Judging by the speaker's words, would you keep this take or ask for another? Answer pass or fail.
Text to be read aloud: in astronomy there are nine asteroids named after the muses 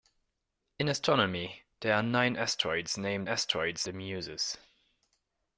fail